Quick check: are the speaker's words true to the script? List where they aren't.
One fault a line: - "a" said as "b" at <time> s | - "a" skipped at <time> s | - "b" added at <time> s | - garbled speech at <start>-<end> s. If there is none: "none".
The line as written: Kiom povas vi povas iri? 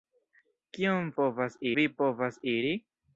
none